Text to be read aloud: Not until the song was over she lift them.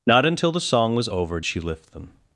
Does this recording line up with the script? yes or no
yes